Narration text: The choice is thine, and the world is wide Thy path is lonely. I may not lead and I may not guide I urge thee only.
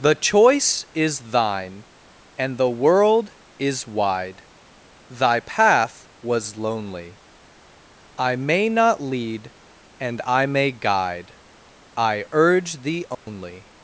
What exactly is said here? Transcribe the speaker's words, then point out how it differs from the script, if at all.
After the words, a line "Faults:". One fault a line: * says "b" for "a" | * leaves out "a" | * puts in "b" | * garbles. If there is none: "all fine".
The choice is thine, and the world is wide Thy path was lonely. I may not lead and I may guide I urge thee only.
Faults:
* says "was" for "is"
* leaves out "not"